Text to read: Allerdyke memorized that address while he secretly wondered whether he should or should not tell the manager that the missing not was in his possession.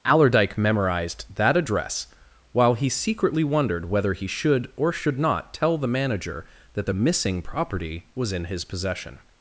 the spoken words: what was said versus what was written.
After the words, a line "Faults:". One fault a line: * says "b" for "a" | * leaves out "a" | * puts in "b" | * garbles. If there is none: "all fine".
Allerdyke memorized that address while he secretly wondered whether he should or should not tell the manager that the missing property was in his possession.
Faults:
* says "property" for "not"